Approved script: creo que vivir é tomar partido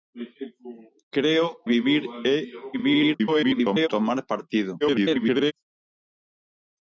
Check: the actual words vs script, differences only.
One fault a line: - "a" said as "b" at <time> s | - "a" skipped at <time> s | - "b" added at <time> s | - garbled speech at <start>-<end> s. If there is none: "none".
- "que" skipped at 1.5 s
- garbled speech at 2.7-3.9 s
- garbled speech at 4.8-5.5 s